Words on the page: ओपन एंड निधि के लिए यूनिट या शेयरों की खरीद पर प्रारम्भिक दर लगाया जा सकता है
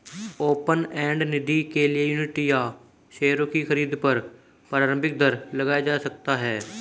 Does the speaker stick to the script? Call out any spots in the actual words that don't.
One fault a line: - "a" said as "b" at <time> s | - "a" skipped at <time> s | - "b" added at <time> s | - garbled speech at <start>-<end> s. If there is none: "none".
none